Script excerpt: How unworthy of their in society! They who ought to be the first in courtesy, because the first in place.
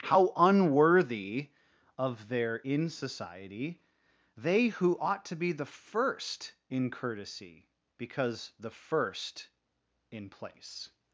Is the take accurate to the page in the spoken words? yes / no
yes